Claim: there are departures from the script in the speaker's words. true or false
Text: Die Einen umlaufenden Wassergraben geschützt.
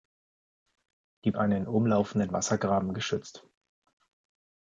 false